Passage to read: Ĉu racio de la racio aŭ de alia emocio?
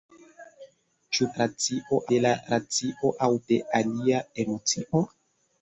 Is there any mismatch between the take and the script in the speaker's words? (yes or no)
no